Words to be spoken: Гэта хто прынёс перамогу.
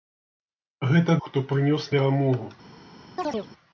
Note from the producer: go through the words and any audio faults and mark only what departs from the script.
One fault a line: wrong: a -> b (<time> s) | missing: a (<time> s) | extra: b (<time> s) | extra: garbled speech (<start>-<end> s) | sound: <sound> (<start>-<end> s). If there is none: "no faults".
sound: chirp (3.2-3.5 s)